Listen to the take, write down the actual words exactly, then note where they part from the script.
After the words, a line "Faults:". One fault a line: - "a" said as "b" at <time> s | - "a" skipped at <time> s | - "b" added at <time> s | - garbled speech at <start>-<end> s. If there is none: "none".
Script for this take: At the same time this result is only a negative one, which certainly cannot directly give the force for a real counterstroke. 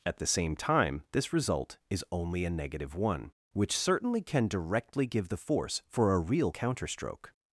At the same time this result is only a negative one, which certainly can directly give the force for a real counterstroke.
Faults:
- "cannot" said as "can" at 4.2 s